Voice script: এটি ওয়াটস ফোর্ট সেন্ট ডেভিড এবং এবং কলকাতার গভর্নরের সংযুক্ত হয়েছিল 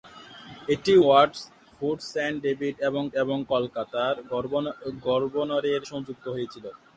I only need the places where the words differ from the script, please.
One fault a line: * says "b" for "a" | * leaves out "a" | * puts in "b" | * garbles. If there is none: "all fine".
all fine